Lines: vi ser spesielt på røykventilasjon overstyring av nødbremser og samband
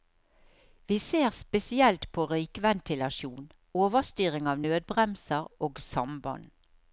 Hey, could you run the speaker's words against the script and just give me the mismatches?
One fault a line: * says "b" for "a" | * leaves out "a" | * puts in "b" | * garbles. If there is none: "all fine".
all fine